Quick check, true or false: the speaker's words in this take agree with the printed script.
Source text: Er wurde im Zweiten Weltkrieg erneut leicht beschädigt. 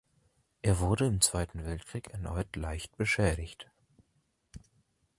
true